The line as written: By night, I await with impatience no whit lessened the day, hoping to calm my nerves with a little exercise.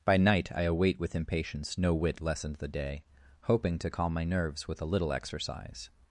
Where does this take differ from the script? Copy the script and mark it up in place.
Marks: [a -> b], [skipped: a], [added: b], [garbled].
By night, I await with impatience no whit lessened the day, hoping to calm my nerves with a little exercise.